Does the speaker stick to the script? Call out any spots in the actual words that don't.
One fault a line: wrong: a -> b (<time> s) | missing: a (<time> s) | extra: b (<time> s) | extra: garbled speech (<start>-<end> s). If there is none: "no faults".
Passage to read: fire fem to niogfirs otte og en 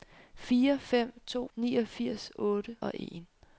no faults